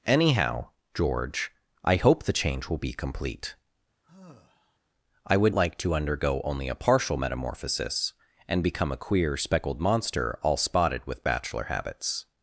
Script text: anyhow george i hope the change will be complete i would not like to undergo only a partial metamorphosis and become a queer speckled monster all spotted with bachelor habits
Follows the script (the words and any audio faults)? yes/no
no